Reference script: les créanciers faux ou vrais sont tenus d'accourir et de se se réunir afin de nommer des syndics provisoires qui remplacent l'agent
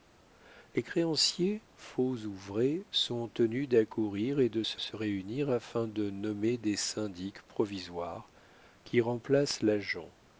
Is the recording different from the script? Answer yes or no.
no